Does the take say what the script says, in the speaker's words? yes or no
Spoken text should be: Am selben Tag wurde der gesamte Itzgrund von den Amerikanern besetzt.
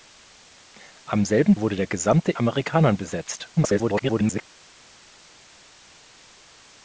no